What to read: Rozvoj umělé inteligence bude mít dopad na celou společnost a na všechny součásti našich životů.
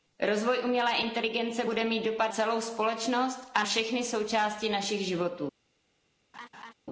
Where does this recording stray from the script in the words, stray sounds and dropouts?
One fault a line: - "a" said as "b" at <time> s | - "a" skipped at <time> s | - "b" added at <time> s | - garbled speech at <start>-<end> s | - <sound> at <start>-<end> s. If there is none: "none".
- "na" skipped at 2.3 s
- "na" skipped at 3.6 s
- laugh at 6.3-6.7 s